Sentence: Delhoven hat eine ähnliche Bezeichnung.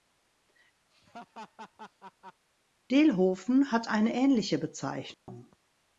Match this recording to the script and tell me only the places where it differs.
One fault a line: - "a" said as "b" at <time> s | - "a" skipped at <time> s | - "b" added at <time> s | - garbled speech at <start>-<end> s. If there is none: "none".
none